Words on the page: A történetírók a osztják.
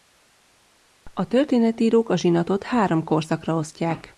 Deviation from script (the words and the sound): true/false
true